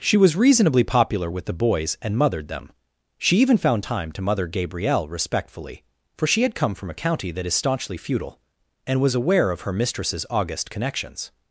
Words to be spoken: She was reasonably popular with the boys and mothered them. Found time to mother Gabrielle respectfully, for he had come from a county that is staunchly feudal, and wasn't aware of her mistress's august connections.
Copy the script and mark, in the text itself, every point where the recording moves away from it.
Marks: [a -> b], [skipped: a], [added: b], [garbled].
She was reasonably popular with the boys and mothered them. [added: She even] Found time to mother Gabrielle respectfully, for [he -> she] had come from a county that is staunchly feudal, and [wasn't -> was] aware of her mistress's august connections.